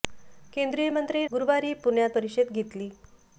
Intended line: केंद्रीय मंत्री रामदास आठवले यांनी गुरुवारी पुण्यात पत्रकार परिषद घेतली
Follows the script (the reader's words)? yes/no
no